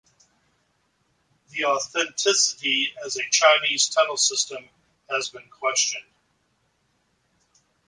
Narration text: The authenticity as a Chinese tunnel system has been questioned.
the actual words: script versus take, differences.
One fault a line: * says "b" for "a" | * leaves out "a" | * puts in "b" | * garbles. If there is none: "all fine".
all fine